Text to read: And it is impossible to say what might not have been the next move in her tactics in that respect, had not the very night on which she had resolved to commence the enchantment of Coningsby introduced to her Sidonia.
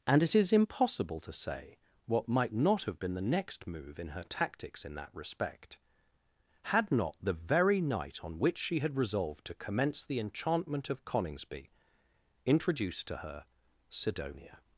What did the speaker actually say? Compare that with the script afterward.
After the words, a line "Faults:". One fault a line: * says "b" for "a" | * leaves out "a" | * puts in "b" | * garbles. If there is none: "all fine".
And it is impossible to say what might not have been the next move in her tactics in that respect, had not the very night on which she had resolved to commence the enchantment of Coningsby introduced to her Sidonia.
Faults:
all fine